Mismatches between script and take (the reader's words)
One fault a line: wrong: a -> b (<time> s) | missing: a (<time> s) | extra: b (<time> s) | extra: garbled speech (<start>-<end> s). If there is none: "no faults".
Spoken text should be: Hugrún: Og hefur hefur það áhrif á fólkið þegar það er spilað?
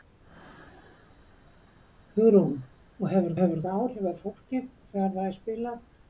no faults